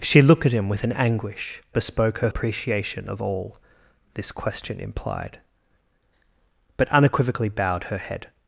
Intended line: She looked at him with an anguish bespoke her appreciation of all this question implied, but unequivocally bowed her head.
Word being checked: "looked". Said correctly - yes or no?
yes